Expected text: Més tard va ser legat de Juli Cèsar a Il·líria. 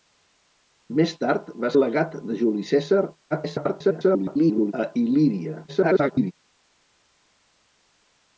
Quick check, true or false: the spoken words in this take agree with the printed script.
false